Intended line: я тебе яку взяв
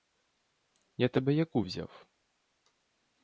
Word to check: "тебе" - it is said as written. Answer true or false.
true